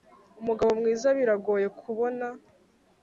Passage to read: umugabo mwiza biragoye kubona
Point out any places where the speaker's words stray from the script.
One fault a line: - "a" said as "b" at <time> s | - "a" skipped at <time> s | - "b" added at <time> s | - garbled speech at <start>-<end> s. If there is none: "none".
none